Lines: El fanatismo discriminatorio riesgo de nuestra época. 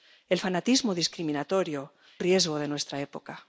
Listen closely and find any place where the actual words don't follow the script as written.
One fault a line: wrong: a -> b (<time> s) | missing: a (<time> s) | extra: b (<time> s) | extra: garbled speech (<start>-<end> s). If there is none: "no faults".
no faults